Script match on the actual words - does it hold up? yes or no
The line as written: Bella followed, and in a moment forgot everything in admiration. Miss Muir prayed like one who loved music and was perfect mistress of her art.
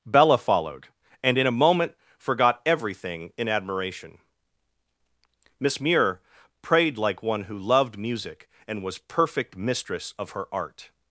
yes